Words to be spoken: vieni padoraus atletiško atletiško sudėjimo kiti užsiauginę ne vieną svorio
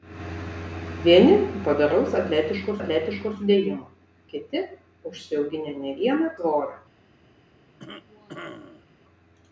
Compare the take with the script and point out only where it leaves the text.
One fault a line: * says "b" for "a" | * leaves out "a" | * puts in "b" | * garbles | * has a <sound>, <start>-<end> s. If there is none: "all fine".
* has a cough, 7.8-8.9 s